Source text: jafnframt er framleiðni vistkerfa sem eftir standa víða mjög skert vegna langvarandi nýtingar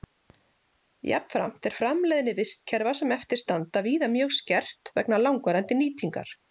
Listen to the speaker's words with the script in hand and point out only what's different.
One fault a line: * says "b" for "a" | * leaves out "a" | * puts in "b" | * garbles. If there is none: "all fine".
all fine